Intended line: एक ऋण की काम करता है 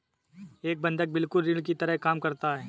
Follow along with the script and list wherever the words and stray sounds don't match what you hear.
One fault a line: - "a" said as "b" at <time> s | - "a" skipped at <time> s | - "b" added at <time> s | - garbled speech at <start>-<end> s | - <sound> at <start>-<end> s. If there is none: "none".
- "बंधक बिल्कुल" added at 0.8 s
- "तरह" added at 1.8 s